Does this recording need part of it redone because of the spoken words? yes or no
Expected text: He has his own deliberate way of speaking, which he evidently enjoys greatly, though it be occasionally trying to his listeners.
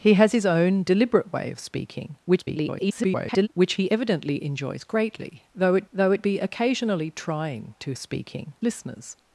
yes